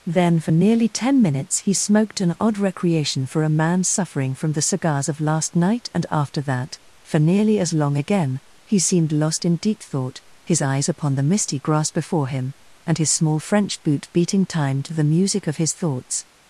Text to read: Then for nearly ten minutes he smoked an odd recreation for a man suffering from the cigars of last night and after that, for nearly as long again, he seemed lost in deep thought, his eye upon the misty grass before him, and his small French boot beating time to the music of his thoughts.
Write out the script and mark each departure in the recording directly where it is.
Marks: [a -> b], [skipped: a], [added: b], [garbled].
Then for nearly ten minutes he smoked an odd recreation for a man suffering from the cigars of last night and after that, for nearly as long again, he seemed lost in deep thought, his [eye -> eyes] upon the misty grass before him, and his small French boot beating time to the music of his thoughts.